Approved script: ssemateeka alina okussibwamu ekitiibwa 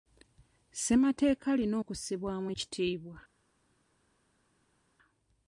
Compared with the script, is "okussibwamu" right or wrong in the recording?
right